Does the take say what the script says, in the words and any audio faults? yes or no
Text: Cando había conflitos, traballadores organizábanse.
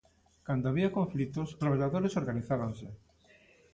yes